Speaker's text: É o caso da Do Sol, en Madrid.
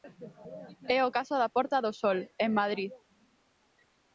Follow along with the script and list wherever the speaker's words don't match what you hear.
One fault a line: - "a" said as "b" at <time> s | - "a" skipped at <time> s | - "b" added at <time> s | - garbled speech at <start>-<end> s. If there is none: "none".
- "Porta" added at 1.6 s